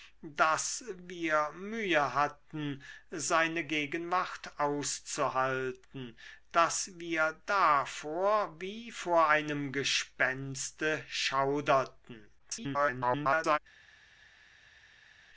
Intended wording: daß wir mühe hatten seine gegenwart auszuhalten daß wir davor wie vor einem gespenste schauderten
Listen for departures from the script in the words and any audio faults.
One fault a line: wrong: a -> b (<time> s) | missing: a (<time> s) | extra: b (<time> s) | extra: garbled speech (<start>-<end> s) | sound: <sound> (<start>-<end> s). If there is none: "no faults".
extra: garbled speech (12.4-13.6 s)